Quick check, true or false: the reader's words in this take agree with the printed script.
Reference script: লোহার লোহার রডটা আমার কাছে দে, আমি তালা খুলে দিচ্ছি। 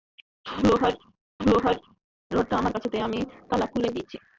true